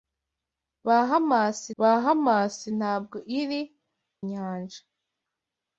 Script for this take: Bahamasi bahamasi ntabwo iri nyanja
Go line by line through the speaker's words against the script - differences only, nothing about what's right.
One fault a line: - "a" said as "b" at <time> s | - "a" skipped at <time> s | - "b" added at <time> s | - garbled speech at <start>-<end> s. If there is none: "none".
none